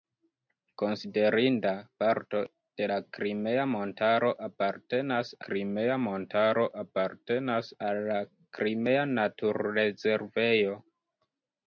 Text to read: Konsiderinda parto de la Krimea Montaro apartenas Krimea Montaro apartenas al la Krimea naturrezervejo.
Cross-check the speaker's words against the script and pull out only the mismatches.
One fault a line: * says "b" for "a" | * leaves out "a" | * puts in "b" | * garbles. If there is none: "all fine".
all fine